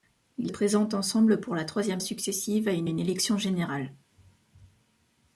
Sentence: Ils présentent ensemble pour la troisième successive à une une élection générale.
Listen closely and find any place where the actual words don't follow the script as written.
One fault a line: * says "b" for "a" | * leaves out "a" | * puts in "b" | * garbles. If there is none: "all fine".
all fine